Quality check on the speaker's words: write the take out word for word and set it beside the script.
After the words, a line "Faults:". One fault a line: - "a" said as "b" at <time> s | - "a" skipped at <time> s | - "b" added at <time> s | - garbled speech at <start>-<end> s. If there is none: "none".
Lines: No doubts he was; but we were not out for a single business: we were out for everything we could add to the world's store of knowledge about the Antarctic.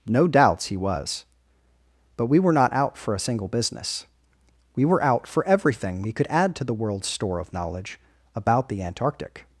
No doubts he was; but we were not out for a single business: we were out for everything we could add to the world's store of knowledge about the Antarctic.
Faults:
none